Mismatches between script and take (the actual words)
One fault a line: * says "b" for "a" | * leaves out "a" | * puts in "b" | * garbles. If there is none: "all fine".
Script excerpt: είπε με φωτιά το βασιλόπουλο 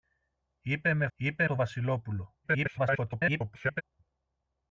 * says "είπε" for "φωτιά"
* garbles